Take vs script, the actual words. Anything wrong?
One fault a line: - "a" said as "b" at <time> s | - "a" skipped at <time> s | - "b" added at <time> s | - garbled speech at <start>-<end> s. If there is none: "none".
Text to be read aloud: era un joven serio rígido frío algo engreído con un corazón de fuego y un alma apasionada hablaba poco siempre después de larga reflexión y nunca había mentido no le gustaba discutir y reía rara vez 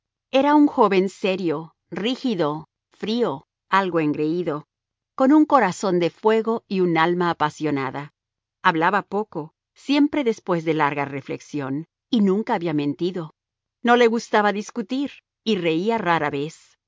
none